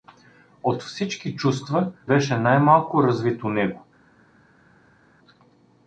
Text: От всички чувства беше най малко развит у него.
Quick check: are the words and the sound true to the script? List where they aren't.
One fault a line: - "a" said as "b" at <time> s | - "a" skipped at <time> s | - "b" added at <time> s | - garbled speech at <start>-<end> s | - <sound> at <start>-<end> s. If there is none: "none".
none